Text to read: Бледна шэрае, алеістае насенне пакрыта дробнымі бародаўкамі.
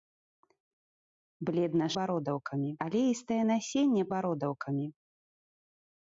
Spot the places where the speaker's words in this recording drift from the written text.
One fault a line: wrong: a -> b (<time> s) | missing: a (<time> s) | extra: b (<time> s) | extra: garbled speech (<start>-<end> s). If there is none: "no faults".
wrong: шэрае -> бародаўкамі (2.0 s)
missing: пакрыта дробнымі (4.0 s)